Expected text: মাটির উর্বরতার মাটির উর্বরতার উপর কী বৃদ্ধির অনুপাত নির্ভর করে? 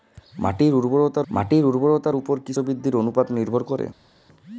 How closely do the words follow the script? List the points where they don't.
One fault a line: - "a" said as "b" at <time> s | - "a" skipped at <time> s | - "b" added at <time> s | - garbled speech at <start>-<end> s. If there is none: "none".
none